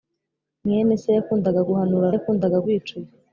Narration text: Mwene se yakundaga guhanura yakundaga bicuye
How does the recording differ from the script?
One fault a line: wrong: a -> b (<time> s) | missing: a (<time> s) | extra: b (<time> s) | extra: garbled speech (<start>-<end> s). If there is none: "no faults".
no faults